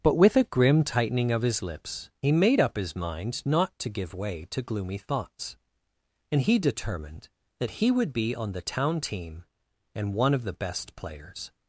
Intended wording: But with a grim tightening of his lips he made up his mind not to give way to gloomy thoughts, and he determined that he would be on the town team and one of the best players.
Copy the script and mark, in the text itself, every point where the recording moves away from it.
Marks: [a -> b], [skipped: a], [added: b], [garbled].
But with a grim tightening of his lips he made up his mind not to give way to gloomy thoughts, and he determined that he would be on the town team and one of the best players.